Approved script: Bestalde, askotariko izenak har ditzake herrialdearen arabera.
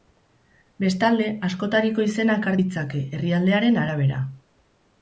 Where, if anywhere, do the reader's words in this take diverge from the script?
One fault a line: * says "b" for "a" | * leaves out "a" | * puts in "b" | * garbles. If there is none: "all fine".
all fine